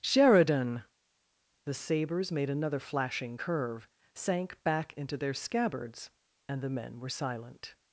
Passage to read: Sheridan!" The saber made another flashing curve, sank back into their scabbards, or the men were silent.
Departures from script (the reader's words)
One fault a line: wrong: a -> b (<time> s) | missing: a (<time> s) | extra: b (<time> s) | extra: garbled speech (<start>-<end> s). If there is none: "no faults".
wrong: saber -> sabers (1.7 s)
wrong: or -> and (6.5 s)